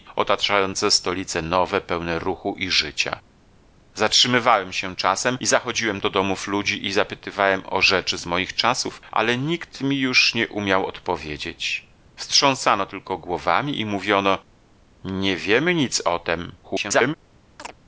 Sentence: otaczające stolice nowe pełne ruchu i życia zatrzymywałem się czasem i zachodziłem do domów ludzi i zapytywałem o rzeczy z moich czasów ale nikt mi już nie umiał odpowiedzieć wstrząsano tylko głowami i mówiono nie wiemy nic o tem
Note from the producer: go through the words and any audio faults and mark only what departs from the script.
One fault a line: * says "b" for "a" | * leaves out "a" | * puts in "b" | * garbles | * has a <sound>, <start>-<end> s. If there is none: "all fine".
* garbles
* has a chirp, 17.6-17.7 s